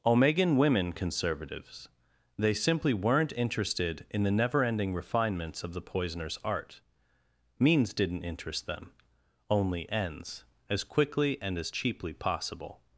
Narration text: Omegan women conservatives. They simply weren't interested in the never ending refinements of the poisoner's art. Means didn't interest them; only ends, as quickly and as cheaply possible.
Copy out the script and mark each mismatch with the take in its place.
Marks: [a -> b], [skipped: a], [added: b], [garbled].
Omegan women conservatives. They simply weren't interested in the never ending refinements of the poisoner's art. Means didn't interest them; only ends, as quickly and as cheaply possible.